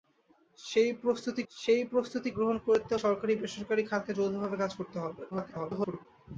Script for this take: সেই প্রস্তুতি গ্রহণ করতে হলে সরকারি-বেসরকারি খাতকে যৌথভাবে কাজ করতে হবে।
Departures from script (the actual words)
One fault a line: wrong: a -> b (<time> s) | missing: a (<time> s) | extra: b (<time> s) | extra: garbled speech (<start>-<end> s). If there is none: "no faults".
extra: সেই প্রস্তুতি (1.5 s)
missing: হলে (2.9 s)
extra: garbled speech (5.3-6.1 s)